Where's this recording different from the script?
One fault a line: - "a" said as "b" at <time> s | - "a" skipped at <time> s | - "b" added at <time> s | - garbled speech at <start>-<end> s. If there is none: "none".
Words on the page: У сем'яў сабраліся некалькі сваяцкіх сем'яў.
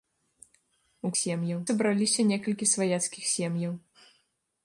none